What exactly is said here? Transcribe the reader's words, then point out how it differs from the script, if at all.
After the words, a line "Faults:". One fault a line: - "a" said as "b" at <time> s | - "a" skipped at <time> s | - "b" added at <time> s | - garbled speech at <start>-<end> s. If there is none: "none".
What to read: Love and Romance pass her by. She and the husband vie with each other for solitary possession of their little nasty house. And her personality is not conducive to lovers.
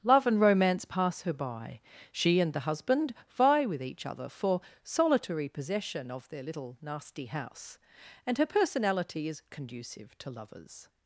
Love and Romance pass her by. She and the husband vie with each other for solitary possession of their little nasty house. And her personality is conducive to lovers.
Faults:
- "not" skipped at 9.4 s